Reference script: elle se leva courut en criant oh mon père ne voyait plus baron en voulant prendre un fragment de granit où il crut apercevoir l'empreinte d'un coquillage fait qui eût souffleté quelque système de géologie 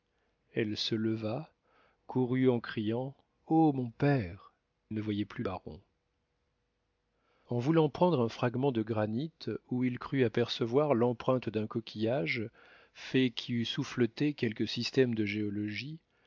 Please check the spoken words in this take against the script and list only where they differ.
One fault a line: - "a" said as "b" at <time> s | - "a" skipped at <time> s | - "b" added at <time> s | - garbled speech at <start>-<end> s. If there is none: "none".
none